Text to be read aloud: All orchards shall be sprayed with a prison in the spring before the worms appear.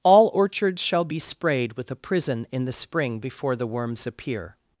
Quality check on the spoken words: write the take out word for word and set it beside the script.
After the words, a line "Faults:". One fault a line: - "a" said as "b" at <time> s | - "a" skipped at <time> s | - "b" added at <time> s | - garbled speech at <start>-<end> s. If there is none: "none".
All orchards shall be sprayed with a prison in the spring before the worms appear.
Faults:
none